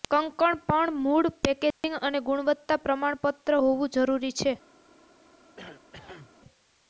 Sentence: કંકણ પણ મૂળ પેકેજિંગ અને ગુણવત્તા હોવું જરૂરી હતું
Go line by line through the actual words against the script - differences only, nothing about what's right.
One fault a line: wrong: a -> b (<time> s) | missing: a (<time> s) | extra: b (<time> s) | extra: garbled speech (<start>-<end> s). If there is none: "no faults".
extra: પ્રમાણપત્ર (2.9 s)
wrong: હતું -> છે (4.4 s)